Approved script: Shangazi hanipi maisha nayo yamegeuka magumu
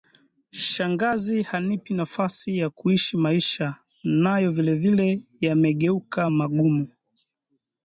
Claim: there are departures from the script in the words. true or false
true